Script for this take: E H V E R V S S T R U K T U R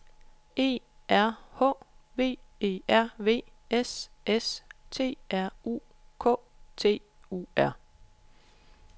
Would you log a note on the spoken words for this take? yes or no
yes